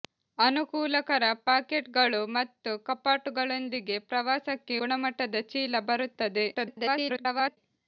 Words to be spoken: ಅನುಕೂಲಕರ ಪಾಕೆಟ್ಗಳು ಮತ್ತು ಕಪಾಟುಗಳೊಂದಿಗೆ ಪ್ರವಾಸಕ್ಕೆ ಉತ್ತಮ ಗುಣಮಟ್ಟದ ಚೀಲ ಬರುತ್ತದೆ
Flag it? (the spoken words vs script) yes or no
yes